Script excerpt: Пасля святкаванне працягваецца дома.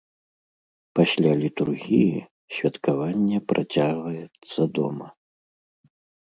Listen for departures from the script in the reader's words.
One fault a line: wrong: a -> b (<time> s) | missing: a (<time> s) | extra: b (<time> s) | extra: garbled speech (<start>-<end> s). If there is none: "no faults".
extra: літургіі (1.4 s)